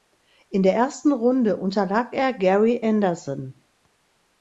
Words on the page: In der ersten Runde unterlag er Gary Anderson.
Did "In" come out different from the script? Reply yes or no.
no